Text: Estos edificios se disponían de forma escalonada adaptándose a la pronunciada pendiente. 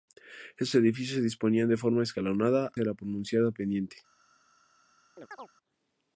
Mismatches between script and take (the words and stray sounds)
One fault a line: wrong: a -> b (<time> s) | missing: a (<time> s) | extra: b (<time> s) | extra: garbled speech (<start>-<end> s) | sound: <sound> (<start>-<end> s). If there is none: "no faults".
missing: adaptándose (2.7 s)
sound: chirp (5.2-5.5 s)